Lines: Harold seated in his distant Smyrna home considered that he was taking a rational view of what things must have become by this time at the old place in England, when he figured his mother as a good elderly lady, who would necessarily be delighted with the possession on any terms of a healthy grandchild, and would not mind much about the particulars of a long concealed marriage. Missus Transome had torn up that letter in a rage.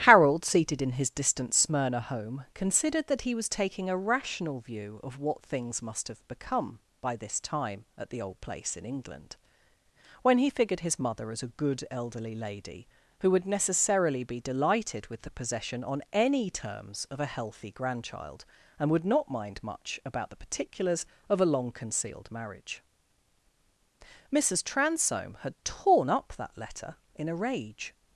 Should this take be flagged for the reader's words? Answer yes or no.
no